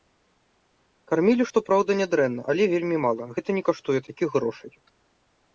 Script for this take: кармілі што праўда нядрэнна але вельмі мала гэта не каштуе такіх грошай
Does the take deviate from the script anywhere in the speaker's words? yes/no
no